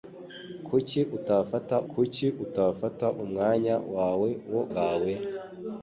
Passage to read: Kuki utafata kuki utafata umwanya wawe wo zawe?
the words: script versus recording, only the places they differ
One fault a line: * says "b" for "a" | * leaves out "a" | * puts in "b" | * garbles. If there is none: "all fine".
all fine